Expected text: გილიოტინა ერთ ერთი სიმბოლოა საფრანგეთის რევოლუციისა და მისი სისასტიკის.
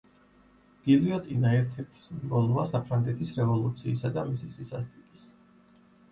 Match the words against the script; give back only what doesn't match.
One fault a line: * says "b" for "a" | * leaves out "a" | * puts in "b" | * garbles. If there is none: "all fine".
all fine